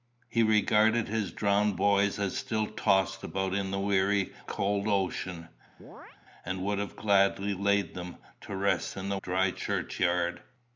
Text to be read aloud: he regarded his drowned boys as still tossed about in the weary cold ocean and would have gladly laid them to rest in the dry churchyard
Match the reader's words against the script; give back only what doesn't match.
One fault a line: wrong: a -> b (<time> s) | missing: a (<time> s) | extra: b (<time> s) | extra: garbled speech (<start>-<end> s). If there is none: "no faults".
no faults